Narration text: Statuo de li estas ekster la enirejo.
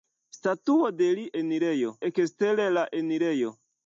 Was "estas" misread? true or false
true